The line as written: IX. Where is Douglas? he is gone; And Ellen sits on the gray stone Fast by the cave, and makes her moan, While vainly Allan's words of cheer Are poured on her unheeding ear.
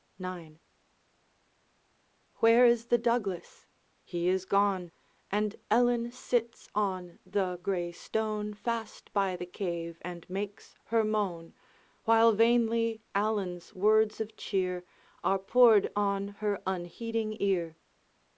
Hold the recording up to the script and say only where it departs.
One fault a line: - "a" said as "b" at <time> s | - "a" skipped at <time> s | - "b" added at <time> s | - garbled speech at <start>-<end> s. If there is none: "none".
- "the" added at 2.9 s